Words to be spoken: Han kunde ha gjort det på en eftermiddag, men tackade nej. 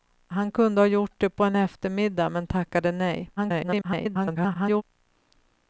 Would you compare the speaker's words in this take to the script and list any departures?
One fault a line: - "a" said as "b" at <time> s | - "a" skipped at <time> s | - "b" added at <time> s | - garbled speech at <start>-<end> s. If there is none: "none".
- garbled speech at 3.4-4.8 s